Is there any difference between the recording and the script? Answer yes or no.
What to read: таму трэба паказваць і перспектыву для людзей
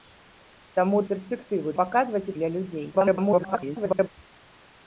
yes